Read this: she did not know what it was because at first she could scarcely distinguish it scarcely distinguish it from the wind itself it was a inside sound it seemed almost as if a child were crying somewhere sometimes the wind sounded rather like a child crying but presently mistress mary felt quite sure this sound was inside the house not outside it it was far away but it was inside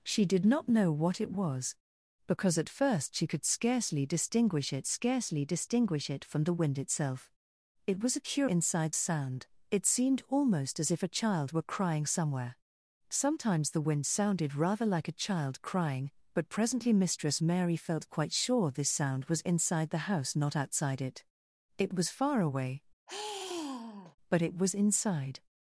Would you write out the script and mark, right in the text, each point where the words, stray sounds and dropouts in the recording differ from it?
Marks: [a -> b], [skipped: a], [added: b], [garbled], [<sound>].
she did not know what it was because at first she could scarcely distinguish it scarcely distinguish it from the wind itself it was a inside sound it seemed almost as if a child were crying somewhere sometimes the wind sounded rather like a child crying but presently mistress mary felt quite sure this sound was inside the house not outside it it was far away [sigh] but it was inside